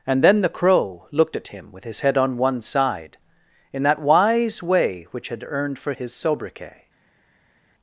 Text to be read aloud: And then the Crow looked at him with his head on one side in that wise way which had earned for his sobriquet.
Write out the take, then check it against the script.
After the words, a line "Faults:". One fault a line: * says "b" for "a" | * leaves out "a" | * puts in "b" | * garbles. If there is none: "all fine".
And then the Crow looked at him with his head on one side in that wise way which had earned for his sobriquet.
Faults:
all fine